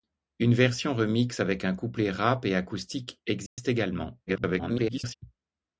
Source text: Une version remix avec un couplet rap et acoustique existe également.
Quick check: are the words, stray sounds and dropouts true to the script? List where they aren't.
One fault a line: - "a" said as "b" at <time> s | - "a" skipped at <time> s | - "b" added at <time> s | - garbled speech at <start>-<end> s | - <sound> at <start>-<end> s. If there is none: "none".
- dropout at 3.5-3.6 s
- garbled speech at 4.3-5.1 s